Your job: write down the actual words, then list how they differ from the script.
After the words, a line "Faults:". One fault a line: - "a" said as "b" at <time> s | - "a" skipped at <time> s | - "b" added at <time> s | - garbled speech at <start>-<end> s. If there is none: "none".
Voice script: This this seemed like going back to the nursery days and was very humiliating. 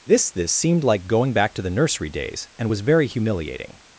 This this seemed like going back to the nursery days and was very humiliating.
Faults:
none